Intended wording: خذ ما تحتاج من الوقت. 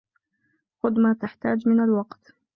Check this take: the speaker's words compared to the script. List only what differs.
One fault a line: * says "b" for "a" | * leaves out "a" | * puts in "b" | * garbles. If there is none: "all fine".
all fine